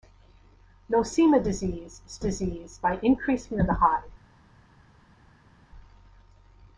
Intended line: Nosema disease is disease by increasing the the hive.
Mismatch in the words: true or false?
false